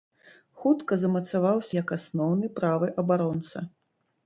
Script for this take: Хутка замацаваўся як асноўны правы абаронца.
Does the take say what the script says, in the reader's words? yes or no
yes